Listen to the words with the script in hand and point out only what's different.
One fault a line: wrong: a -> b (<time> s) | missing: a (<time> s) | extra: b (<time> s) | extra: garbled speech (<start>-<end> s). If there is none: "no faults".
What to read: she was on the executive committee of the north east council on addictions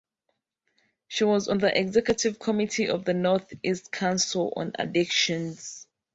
no faults